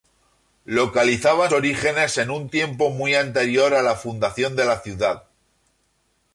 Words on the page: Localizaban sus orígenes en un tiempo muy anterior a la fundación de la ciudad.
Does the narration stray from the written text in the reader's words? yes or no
yes